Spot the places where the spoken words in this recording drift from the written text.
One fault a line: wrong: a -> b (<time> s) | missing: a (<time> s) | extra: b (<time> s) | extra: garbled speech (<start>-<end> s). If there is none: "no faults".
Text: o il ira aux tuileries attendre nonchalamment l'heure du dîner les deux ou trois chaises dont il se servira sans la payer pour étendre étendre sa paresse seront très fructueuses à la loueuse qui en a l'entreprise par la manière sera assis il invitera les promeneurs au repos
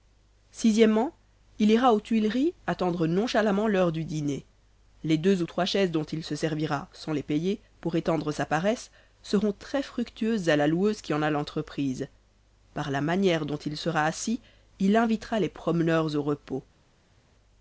wrong: la -> les (7.1 s)
missing: étendre (8.3 s)
extra: dont il (13.4 s)